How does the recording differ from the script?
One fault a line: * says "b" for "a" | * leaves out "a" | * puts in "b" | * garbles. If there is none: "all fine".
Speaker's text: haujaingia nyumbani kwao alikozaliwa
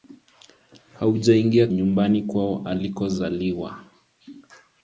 all fine